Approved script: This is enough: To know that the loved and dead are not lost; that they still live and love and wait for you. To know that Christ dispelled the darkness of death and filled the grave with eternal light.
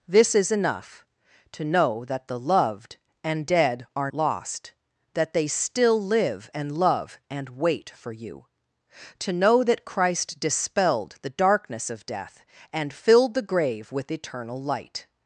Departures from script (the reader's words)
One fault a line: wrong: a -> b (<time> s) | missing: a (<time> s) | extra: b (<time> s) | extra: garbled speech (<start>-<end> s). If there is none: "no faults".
missing: not (4.1 s)